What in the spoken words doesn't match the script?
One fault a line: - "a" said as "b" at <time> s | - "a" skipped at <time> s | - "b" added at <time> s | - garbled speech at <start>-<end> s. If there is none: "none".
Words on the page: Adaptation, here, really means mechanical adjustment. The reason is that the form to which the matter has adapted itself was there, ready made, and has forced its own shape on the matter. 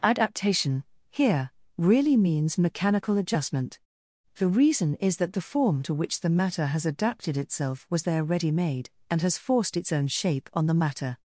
none